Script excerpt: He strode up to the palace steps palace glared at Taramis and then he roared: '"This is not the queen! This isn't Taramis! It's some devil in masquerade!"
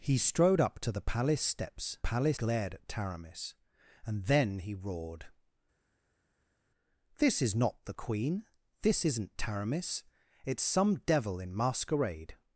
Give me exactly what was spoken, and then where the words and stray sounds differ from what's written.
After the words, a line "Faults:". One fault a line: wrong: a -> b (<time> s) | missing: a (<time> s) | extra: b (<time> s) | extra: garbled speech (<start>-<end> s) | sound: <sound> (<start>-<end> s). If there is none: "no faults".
He strode up to the palace steps palace glared at Taramis and then he roared: '"This is not the queen! This isn't Taramis! It's some devil in masquerade!"
Faults:
no faults